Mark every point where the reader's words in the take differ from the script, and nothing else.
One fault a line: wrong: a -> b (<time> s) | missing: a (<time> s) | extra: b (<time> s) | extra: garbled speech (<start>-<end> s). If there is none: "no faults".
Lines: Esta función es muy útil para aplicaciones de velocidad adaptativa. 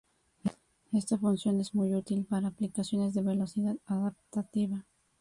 no faults